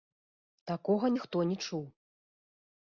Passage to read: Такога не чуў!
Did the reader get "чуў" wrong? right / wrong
right